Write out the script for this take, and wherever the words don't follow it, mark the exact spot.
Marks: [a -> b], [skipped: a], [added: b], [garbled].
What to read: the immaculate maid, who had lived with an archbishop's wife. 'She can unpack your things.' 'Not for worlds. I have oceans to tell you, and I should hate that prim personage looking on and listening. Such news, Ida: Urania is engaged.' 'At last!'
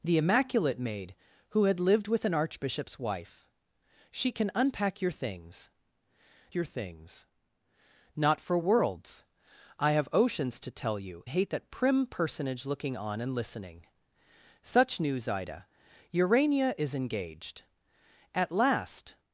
the immaculate maid, who had lived with an archbishop's wife. 'She can unpack your things.' [added: your things] 'Not for worlds. I have oceans to tell you, [skipped: and I should] hate that prim personage looking on and listening. Such news, Ida: Urania is engaged.' 'At last!'